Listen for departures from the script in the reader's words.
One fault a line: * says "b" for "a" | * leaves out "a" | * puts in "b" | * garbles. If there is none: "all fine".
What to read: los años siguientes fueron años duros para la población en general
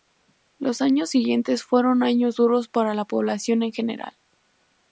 all fine